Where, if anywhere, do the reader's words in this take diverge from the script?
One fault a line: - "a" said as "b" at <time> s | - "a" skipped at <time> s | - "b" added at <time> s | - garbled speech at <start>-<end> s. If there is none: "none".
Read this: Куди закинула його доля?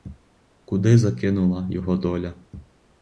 none